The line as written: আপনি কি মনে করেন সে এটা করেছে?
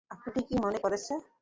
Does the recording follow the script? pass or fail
fail